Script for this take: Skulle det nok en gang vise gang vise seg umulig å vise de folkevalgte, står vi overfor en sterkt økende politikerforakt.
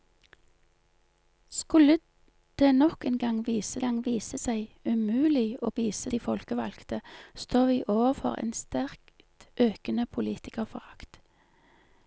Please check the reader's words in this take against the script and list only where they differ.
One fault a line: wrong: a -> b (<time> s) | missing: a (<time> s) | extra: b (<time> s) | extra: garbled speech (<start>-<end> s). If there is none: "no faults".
no faults